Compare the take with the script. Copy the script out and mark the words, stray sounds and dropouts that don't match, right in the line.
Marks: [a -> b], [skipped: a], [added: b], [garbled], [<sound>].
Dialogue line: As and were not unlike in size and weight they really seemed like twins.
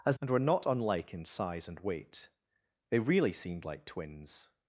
As and were not unlike in size and weight they really seemed like twins.